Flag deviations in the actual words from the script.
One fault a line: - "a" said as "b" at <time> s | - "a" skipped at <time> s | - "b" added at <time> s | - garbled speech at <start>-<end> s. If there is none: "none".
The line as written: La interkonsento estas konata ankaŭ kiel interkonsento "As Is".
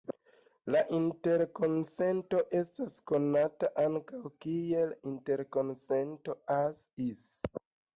none